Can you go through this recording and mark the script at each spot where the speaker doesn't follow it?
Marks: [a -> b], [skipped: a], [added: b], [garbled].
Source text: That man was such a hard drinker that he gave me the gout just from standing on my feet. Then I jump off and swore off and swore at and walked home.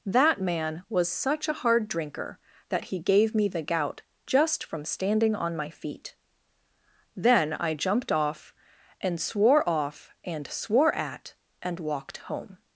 That man was such a hard drinker that he gave me the gout just from standing on my feet. Then I [jump -> jumped] off and swore off and swore at and walked home.